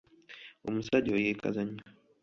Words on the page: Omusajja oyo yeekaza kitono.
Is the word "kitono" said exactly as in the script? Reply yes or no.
no